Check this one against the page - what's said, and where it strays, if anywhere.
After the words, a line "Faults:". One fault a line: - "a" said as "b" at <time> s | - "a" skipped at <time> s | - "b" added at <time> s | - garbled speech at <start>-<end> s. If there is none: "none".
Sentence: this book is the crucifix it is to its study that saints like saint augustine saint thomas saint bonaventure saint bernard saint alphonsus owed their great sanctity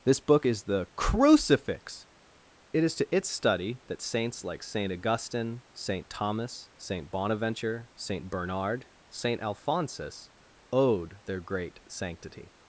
this book is the crucifix it is to its study that saints like saint augustine saint thomas saint bonaventure saint bernard saint alphonsus owed their great sanctity
Faults:
none